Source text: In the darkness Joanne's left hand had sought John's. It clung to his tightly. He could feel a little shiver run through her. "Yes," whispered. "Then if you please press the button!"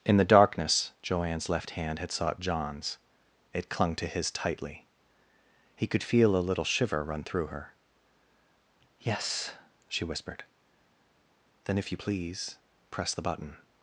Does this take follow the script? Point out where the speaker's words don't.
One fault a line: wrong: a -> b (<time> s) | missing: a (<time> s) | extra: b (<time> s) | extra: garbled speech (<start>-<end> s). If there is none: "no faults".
extra: she (9.9 s)